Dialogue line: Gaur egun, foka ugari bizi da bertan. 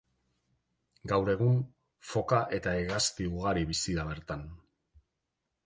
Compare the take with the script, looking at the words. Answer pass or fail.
fail